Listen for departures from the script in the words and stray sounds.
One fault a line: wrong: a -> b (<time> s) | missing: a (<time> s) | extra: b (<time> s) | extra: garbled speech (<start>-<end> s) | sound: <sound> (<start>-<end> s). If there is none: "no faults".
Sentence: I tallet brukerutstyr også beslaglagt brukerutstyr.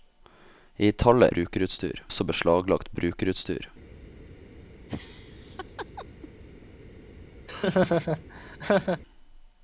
sound: laugh (4.9-6.3 s)
sound: laugh (7.5-9.0 s)